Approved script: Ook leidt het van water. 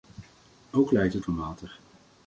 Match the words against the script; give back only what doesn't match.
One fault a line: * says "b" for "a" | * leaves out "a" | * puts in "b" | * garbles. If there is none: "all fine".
all fine